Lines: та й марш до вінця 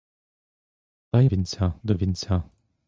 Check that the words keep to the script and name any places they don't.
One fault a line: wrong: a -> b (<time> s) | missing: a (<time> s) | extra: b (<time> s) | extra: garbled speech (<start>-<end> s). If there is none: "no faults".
wrong: марш -> вінця (1.3 s)